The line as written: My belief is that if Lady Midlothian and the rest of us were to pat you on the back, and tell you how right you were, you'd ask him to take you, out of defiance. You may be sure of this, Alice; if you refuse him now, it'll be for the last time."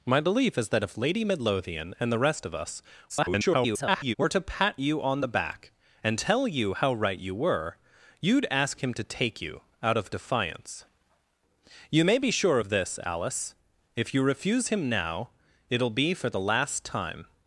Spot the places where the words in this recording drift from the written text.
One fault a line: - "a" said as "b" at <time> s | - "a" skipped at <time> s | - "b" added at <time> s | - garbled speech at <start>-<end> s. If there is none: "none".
- garbled speech at 3.1-4.2 s